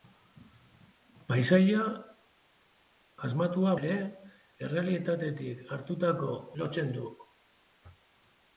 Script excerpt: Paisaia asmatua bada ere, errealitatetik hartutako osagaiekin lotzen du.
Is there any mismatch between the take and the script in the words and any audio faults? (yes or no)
yes